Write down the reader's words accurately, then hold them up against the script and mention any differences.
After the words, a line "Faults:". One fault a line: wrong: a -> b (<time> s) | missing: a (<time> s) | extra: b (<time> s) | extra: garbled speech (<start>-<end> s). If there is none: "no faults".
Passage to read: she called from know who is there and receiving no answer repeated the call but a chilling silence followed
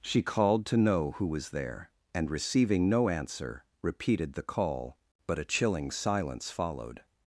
she called to know who was there and receiving no answer repeated the call but a chilling silence followed
Faults:
wrong: from -> to (0.7 s)
wrong: is -> was (1.3 s)